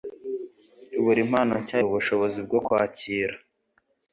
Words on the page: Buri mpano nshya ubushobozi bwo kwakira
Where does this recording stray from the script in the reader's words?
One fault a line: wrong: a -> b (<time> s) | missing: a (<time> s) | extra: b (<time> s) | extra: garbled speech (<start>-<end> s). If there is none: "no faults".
no faults